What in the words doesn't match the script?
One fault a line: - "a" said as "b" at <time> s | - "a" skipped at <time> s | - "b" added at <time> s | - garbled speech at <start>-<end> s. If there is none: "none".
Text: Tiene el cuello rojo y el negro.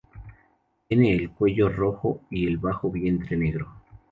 - "bajo vientre" added at 2.6 s